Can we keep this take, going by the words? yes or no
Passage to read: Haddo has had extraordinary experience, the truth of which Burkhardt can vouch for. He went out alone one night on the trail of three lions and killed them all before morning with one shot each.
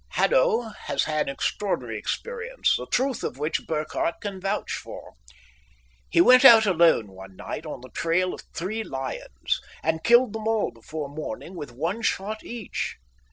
yes